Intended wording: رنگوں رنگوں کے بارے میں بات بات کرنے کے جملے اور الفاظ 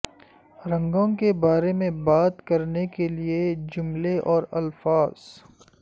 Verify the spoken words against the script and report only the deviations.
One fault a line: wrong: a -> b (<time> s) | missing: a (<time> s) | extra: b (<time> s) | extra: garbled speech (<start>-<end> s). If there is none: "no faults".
missing: رنگوں (1.1 s)
missing: بات (2.4 s)
extra: لئے (3.1 s)